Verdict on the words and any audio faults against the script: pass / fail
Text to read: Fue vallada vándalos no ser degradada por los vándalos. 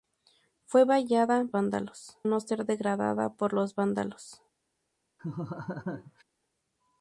fail